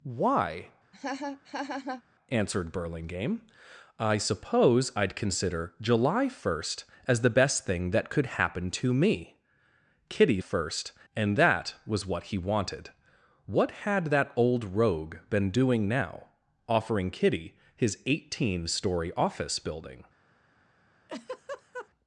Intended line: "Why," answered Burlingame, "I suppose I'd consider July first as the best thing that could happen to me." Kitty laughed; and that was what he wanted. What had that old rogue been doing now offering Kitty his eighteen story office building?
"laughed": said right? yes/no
no